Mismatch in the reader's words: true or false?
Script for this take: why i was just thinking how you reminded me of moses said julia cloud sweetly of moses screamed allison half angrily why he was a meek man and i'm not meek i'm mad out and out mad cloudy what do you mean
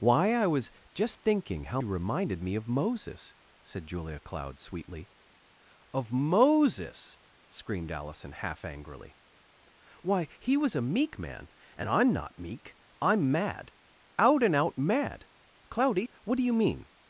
false